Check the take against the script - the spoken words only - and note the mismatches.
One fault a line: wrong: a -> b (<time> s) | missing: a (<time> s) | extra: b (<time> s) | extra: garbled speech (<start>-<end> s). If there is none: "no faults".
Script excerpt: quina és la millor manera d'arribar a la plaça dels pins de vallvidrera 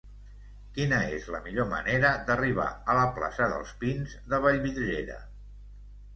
no faults